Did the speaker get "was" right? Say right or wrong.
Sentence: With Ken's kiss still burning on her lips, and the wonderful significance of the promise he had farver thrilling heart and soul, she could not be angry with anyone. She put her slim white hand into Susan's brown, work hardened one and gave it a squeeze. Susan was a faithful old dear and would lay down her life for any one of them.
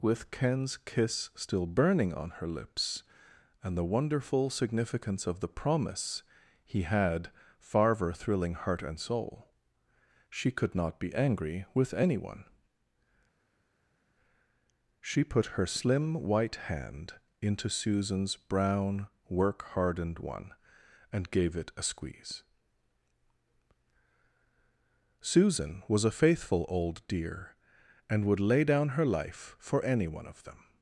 right